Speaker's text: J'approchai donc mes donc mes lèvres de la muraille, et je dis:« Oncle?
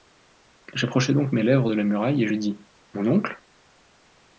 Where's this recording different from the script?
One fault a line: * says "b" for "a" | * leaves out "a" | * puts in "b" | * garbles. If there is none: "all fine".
* leaves out "donc mes"
* puts in "Mon"